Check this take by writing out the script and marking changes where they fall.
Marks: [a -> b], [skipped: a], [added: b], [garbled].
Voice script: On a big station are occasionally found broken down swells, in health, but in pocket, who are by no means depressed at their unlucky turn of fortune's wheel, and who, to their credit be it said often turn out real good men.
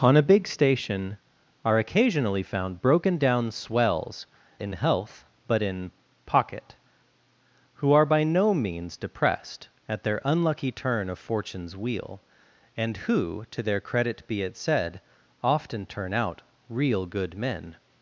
On a big station are occasionally found broken down swells, in health, but in pocket, who are by no means depressed at their unlucky turn of fortune's wheel, and who, to their credit be it said often turn out real good men.